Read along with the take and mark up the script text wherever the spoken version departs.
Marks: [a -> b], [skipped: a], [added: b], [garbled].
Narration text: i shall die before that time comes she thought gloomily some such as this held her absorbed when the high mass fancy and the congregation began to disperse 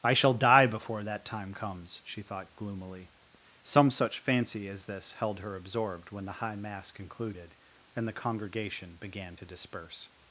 i shall die before that time comes she thought gloomily some such [added: fancy] as this held her absorbed when the high mass [fancy -> concluded] and the congregation began to disperse